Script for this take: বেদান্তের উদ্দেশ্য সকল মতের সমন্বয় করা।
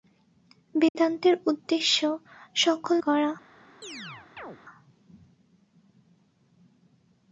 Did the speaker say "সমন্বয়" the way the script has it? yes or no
no